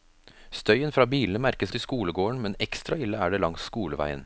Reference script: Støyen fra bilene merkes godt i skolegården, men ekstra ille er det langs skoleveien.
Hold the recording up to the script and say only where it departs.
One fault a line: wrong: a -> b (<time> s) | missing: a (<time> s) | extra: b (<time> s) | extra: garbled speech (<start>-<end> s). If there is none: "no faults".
missing: godt (1.7 s)